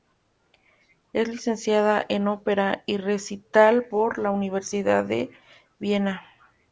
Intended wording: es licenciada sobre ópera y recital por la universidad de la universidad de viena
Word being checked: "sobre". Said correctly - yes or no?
no